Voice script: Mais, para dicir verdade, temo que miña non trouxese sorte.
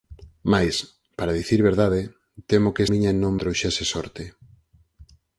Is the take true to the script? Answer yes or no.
yes